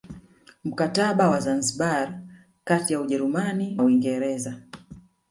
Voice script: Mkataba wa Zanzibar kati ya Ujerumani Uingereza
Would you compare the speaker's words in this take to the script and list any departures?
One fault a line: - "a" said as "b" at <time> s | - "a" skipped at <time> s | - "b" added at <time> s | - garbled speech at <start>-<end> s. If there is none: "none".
none